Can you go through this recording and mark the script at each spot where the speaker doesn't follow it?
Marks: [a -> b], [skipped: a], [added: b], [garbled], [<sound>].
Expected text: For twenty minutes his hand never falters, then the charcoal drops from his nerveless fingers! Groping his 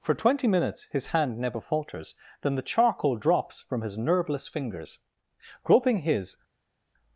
For twenty minutes his hand never falters, then the charcoal drops from his nerveless fingers! Groping his